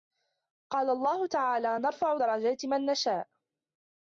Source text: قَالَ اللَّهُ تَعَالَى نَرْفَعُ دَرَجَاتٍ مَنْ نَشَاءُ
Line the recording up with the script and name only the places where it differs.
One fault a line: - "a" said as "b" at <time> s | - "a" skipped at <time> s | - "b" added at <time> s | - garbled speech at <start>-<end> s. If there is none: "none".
none